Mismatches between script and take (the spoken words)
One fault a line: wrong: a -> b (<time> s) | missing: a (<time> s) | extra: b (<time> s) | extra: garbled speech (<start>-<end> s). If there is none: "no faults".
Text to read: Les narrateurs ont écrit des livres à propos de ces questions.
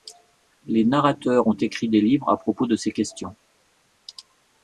no faults